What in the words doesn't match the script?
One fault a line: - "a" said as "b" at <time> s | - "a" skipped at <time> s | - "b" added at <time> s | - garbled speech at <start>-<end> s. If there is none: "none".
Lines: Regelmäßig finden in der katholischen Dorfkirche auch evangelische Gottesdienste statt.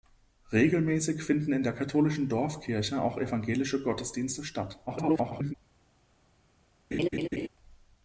- garbled speech at 4.9-5.5 s